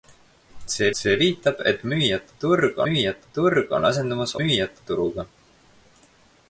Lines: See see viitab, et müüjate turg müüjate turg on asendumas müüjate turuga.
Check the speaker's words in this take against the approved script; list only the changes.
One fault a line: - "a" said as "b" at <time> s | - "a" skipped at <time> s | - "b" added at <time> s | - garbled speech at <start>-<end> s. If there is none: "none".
none